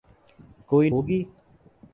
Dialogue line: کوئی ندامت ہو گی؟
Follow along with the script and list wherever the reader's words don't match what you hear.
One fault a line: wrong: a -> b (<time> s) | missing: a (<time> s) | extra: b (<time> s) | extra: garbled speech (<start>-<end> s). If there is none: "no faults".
missing: ندامت (0.9 s)